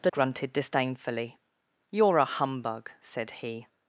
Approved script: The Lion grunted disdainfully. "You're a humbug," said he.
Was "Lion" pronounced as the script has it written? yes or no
no